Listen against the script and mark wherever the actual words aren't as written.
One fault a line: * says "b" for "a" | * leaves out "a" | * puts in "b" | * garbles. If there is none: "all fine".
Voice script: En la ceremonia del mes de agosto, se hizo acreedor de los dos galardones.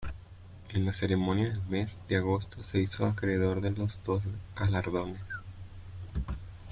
all fine